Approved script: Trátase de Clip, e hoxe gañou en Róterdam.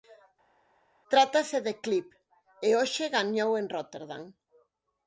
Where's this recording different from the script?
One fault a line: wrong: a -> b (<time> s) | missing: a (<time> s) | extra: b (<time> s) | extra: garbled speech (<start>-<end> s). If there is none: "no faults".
no faults